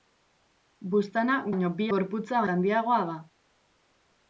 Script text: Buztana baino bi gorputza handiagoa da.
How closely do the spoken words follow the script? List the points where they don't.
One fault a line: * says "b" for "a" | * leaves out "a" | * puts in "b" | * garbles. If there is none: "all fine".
all fine